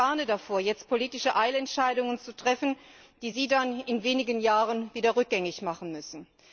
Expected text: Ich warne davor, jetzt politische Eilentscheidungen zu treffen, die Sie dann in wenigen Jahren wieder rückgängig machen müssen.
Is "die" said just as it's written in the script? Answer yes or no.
yes